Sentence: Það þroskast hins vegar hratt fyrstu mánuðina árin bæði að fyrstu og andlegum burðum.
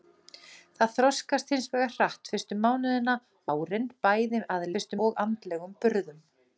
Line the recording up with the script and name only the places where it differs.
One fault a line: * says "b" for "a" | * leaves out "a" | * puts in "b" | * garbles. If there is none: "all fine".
all fine